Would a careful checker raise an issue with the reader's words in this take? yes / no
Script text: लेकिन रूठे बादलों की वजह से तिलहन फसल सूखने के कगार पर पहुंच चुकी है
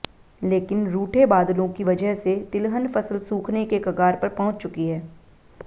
no